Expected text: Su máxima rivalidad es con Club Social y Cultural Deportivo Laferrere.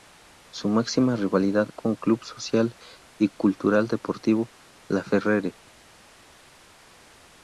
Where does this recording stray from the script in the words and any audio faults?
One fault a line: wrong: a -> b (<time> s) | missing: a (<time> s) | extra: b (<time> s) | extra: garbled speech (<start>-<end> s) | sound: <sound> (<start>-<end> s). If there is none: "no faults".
missing: es (1.7 s)